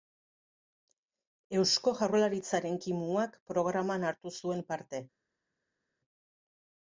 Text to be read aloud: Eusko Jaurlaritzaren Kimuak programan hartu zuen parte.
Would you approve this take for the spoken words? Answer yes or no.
yes